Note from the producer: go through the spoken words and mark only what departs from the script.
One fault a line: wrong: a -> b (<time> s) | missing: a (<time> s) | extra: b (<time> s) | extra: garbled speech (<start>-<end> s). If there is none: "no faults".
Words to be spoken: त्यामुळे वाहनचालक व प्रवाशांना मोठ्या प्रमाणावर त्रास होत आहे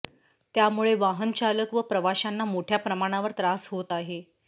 no faults